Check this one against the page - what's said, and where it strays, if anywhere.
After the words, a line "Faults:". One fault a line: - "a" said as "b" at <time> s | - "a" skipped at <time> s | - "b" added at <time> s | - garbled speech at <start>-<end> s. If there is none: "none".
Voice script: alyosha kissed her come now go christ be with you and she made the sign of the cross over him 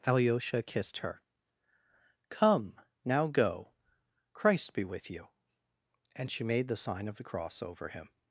alyosha kissed her come now go christ be with you and she made the sign of the cross over him
Faults:
none